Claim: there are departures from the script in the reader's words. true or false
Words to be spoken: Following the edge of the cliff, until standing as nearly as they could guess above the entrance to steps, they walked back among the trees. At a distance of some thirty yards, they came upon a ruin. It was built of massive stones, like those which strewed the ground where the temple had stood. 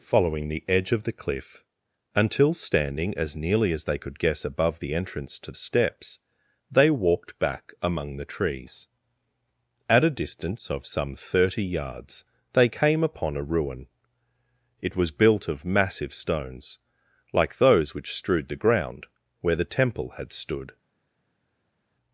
false